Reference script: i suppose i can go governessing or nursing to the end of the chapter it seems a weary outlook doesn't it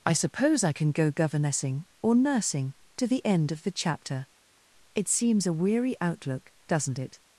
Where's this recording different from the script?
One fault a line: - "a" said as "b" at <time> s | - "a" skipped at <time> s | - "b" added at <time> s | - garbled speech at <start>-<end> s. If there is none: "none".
none